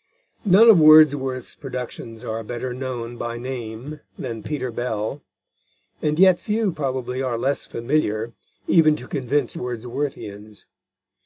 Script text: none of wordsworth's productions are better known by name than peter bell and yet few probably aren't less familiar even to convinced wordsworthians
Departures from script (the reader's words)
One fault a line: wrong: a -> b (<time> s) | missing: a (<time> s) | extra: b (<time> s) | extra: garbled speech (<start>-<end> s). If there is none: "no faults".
wrong: aren't -> are (7.2 s)